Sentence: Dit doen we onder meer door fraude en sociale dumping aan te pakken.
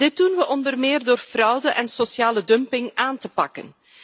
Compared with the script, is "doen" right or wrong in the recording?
right